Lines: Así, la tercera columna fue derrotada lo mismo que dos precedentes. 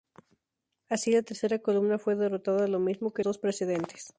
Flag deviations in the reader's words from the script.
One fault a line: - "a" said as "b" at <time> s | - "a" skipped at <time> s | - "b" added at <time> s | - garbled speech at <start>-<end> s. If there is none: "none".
none